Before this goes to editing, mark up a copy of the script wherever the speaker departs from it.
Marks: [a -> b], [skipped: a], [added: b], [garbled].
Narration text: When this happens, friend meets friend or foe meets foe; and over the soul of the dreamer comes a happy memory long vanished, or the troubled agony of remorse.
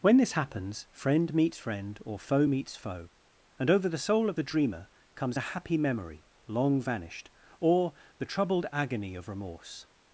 When this happens, friend meets friend or foe meets foe; and over the soul of the dreamer comes a happy memory long vanished, or the troubled agony of remorse.